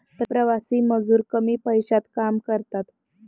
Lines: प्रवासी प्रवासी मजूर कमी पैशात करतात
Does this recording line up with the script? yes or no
no